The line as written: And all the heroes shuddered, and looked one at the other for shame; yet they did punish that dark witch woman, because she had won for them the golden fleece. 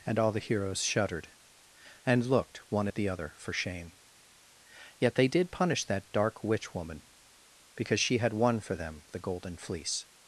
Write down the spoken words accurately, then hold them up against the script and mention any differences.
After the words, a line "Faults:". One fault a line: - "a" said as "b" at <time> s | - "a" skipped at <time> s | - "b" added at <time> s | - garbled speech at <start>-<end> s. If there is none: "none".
And all the heroes shuddered, and looked one at the other for shame; yet they did punish that dark witch woman, because she had won for them the golden fleece.
Faults:
none